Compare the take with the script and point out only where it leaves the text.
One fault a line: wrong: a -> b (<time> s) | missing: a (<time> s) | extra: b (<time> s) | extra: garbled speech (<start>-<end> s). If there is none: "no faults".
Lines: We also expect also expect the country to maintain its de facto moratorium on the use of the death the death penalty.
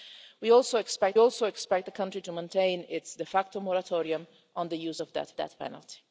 no faults